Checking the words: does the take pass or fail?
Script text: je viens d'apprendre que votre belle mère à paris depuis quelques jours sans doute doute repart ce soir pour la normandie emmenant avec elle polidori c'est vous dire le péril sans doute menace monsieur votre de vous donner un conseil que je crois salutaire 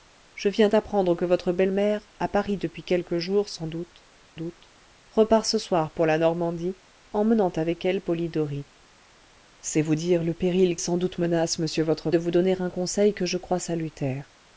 pass